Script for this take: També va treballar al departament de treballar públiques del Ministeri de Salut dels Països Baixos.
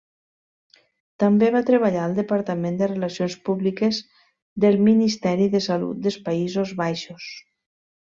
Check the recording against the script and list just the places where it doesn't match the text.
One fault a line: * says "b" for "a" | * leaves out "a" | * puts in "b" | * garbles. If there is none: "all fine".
* says "relacions" for "treballar"